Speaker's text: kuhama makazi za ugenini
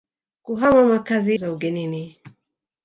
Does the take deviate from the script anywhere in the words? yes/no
no